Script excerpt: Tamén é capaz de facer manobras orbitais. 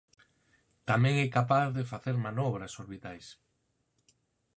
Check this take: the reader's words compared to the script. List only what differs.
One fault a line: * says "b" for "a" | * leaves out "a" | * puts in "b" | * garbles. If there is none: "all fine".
all fine